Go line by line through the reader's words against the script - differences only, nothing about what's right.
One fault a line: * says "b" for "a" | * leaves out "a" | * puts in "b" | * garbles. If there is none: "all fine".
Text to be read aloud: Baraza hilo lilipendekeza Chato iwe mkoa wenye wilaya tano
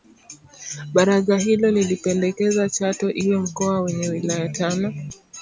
all fine